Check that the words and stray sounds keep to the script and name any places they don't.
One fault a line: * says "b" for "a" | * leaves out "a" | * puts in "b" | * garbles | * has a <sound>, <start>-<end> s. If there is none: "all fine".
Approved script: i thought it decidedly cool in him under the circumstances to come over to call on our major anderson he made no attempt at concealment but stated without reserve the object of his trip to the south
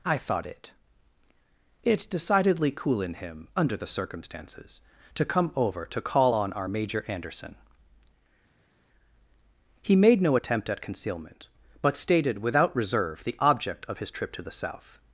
* puts in "it"